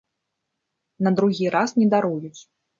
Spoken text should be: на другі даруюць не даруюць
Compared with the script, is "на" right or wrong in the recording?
right